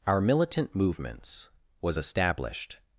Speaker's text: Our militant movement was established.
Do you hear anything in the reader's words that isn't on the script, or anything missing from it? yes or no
yes